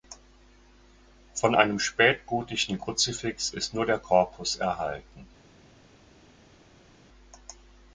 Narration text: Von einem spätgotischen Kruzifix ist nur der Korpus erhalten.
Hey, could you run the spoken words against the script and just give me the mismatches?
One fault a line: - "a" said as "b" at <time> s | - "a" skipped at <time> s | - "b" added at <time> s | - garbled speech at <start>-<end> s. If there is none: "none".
none